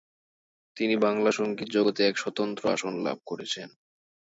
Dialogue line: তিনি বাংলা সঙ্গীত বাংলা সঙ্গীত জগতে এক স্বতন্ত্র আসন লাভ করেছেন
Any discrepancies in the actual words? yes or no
yes